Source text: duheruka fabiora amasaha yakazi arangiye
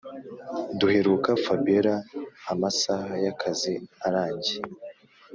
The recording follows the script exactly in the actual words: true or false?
true